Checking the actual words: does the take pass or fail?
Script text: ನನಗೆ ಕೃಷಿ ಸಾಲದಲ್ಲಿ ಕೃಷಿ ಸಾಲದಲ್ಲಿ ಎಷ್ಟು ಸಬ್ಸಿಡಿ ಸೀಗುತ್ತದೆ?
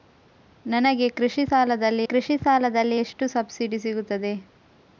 pass